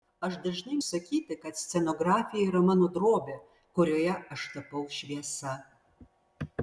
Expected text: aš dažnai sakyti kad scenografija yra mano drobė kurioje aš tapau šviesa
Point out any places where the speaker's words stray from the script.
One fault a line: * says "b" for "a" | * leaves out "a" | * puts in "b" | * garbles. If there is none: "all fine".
all fine